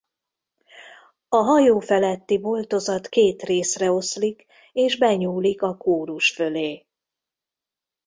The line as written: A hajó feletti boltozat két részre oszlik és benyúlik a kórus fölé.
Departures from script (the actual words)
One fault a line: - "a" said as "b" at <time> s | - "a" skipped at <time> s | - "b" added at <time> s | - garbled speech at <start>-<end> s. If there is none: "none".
none